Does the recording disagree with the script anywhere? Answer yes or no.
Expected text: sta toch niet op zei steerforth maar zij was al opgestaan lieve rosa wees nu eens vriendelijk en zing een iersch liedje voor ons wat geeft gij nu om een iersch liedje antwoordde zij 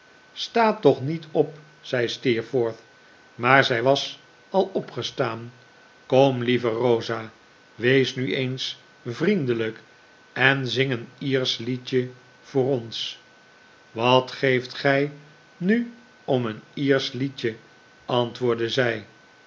yes